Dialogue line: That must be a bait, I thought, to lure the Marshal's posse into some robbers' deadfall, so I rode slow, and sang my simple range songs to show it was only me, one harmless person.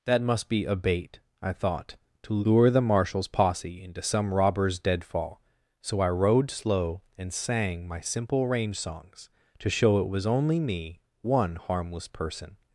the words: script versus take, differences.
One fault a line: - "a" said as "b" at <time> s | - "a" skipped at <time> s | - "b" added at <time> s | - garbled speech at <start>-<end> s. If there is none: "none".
none